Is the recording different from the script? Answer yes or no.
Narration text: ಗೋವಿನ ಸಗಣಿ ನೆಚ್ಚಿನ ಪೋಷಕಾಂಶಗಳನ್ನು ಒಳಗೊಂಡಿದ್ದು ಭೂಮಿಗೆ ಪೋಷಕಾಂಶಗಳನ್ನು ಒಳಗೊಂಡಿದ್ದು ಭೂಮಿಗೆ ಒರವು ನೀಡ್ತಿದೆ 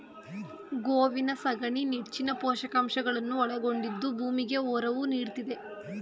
yes